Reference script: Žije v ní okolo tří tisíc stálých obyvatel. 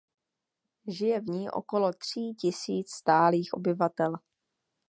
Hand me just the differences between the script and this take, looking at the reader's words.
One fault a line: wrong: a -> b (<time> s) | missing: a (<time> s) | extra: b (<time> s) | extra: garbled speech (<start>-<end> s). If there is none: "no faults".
no faults